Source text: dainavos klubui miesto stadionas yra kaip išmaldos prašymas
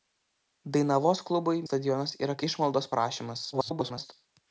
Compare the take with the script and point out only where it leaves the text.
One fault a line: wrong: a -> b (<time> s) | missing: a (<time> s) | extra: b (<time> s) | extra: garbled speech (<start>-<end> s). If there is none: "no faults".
missing: miesto (1.6 s)
missing: kaip (2.4 s)
extra: garbled speech (3.5-4.1 s)